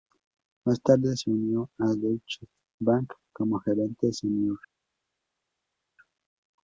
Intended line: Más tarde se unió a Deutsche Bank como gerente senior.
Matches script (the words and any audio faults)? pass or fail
pass